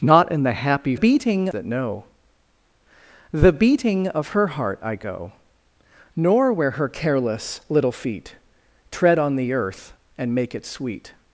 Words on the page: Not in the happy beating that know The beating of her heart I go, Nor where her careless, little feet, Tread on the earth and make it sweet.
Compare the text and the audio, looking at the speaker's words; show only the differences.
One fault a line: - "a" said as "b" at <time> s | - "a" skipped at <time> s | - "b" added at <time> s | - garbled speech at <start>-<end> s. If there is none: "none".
none